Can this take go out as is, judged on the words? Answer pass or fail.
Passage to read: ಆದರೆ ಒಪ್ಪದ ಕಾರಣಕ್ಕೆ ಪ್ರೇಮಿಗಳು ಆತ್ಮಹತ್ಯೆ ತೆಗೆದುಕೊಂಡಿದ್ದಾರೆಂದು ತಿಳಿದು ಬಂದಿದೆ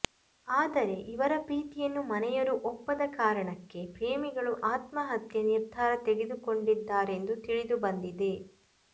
fail